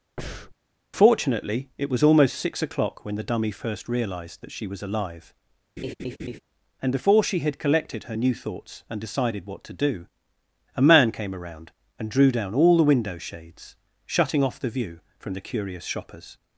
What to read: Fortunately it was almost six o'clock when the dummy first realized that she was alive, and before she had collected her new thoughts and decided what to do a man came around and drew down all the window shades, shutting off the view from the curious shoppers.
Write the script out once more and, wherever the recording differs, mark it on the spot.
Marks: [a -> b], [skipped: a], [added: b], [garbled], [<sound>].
[breath] Fortunately it was almost six o'clock when the dummy first realized that she was alive, [laugh] and before she had collected her new thoughts and decided what to do a man came around and drew down all the window shades, shutting off the view from the curious shoppers.